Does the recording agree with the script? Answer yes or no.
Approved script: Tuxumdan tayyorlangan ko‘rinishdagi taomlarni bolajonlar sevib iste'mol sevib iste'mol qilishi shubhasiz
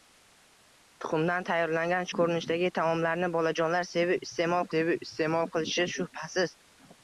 yes